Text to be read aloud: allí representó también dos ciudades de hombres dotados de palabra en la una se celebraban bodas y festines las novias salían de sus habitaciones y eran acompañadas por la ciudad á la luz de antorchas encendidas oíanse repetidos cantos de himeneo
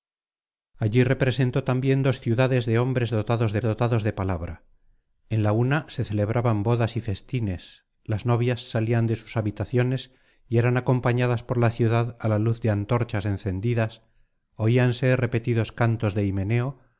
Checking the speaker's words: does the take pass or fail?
fail